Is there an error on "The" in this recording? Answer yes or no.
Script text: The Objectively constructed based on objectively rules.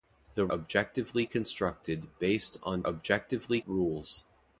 no